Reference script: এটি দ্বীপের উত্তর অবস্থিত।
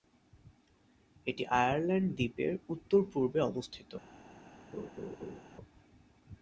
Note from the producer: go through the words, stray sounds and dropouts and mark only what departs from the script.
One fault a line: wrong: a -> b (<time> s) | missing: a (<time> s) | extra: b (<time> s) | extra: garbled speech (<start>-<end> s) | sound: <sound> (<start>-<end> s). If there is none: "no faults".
extra: আয়ারল্যান্ড (1.6 s)
extra: পূর্বে (3.1 s)
sound: laugh (4.7-5.4 s)